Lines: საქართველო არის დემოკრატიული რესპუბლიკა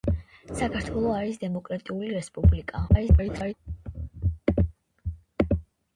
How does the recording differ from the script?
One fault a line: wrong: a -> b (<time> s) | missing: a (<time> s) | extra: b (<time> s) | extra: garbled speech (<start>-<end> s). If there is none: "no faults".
extra: garbled speech (2.9-3.5 s)